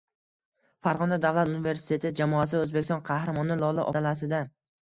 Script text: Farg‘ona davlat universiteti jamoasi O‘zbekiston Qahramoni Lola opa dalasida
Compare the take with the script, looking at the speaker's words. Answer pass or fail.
fail